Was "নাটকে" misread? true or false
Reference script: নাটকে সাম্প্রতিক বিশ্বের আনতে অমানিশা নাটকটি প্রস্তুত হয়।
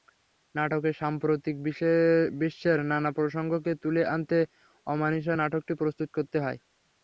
false